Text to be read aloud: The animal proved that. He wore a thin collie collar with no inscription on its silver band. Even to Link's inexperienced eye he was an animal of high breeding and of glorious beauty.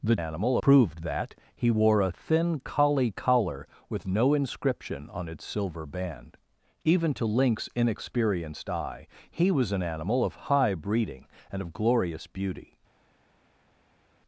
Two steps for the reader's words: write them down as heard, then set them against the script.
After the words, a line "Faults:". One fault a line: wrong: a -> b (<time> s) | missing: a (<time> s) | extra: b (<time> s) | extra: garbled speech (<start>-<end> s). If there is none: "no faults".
The animal proved that. He wore a thin collie collar with no inscription on its silver band. Even to Link's inexperienced eye he was an animal of high breeding and of glorious beauty.
Faults:
no faults